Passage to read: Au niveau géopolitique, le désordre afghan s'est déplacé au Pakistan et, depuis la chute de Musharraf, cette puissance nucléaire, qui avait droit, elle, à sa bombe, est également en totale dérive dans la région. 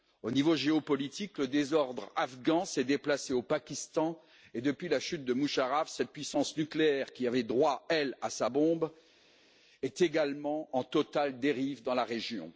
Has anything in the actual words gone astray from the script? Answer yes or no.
no